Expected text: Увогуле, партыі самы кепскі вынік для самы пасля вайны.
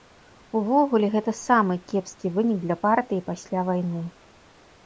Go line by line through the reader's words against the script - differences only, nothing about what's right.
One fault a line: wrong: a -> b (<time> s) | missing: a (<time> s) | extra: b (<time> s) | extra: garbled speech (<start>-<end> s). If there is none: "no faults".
wrong: партыі -> гэта (1.1 s)
wrong: самы -> партыі (2.9 s)